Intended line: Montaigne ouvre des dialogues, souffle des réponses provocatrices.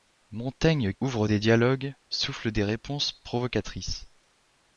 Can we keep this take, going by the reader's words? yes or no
yes